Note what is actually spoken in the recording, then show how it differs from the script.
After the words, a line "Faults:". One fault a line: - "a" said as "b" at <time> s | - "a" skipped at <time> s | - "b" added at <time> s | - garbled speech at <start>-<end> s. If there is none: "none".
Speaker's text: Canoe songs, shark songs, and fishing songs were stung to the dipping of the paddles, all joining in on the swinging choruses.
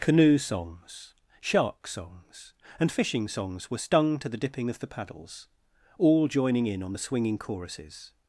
Canoe songs, shark songs, and fishing songs were stung to the dipping of the paddles, all joining in on the swinging choruses.
Faults:
none